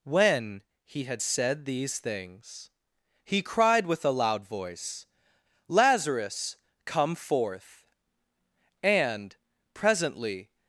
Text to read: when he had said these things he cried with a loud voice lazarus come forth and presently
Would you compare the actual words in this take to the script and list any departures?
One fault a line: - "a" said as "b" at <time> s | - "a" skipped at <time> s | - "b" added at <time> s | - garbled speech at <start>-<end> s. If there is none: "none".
none